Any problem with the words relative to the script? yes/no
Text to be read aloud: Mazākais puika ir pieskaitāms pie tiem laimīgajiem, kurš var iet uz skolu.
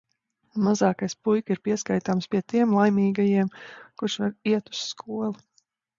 no